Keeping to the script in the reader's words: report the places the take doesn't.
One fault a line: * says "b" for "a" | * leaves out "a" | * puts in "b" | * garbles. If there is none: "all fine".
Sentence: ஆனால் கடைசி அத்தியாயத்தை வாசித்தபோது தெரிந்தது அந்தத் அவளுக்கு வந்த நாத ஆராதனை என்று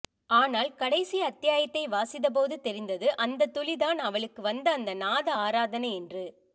* puts in "துளிதான்"
* puts in "அந்த"